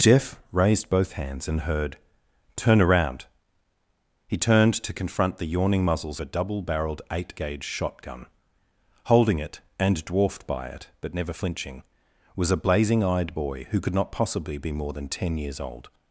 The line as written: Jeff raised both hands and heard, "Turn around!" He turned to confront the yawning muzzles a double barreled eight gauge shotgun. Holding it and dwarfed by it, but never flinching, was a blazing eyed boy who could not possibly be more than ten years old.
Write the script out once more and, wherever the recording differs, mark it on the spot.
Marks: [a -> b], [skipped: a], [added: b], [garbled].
Jeff raised both hands and heard, "Turn around!" He turned to confront the yawning muzzles a double barreled eight gauge shotgun. Holding it and dwarfed by it, but never flinching, was a blazing eyed boy who could not possibly be more than ten years old.